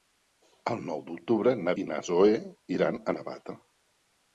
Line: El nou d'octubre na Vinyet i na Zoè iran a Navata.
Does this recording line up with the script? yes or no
no